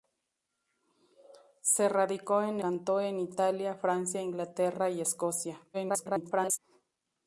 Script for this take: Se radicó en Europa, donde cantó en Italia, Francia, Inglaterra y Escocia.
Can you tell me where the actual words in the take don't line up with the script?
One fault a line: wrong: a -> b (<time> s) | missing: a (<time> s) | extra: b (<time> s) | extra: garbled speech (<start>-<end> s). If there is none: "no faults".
missing: Europa donde (2.6 s)
extra: garbled speech (5.7-6.6 s)